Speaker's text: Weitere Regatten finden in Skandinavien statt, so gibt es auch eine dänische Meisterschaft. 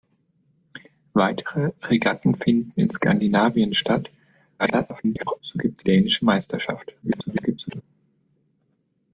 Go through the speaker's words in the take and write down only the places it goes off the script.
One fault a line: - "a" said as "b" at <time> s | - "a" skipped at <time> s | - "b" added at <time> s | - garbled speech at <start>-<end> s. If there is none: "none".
- garbled speech at 4.6-5.4 s
- "es auch eine" skipped at 5.8 s
- garbled speech at 7.0-7.8 s